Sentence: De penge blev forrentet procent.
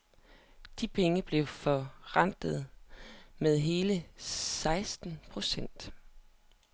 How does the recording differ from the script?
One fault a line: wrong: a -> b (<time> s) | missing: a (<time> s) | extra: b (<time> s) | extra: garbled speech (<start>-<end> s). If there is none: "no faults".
extra: med hele seksten (3.4 s)